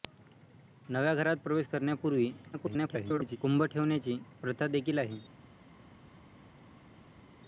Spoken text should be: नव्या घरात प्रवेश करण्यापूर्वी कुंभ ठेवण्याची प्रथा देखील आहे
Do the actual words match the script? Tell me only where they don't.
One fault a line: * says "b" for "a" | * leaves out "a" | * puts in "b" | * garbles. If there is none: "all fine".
* garbles